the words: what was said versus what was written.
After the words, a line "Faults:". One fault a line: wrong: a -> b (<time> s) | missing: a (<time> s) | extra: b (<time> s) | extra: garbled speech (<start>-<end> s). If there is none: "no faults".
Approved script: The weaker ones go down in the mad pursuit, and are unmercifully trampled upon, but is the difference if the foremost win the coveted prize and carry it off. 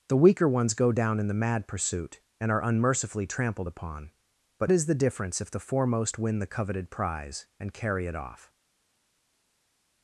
The weaker ones go down in the mad pursuit, and are unmercifully trampled upon, but is the difference if the foremost win the coveted prize and carry it off.
Faults:
no faults